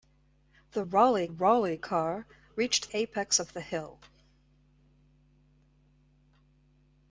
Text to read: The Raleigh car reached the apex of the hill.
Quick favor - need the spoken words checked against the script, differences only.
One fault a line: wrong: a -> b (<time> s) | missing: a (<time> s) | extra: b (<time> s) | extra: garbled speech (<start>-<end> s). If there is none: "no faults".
extra: Raleigh (1.3 s)
missing: the (2.9 s)